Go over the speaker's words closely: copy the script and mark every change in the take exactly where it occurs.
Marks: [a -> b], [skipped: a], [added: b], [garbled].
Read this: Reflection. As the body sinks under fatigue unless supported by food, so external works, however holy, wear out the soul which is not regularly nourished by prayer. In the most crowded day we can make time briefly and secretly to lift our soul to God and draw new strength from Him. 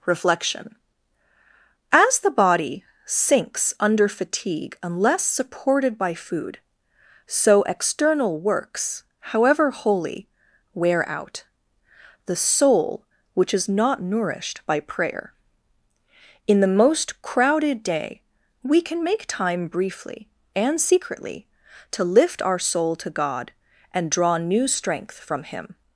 Reflection. As the body sinks under fatigue unless supported by food, so external works, however holy, wear out the soul which is not [skipped: regularly] nourished by prayer. In the most crowded day we can make time briefly and secretly to lift our soul to God and draw new strength from Him.